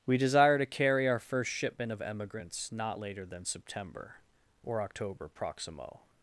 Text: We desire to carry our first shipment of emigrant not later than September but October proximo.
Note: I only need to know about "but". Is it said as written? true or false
false